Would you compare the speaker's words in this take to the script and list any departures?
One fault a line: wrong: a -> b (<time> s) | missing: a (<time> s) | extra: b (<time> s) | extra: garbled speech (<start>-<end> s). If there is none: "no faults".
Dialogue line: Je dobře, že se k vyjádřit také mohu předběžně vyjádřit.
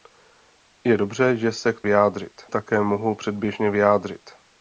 no faults